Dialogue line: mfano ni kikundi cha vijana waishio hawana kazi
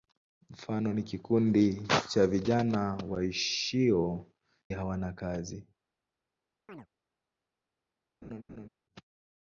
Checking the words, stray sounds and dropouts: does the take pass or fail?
fail